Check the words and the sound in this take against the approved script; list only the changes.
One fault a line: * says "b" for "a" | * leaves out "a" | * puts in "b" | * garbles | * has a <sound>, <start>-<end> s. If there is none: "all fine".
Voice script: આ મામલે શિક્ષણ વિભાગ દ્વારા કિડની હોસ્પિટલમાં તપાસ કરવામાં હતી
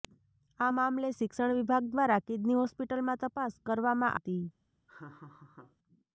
* has a laugh, 4.9-5.8 s